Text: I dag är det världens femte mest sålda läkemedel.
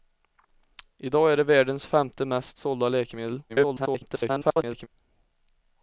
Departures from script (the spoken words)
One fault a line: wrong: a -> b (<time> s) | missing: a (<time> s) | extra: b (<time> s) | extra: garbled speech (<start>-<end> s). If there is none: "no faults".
extra: garbled speech (3.5-4.9 s)